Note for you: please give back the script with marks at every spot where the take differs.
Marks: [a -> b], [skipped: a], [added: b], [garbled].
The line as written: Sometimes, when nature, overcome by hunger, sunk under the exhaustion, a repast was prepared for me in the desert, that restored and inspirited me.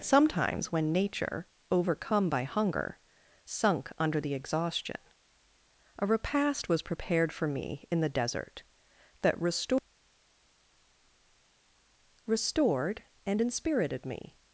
Sometimes, when nature, overcome by hunger, sunk under the exhaustion, a repast was prepared for me in the desert, that restored [added: restored] and inspirited me.